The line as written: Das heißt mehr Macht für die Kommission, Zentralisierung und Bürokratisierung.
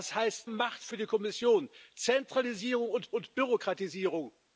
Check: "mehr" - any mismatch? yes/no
yes